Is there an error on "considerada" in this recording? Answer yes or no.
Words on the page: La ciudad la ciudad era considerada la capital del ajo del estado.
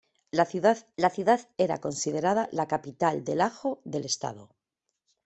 no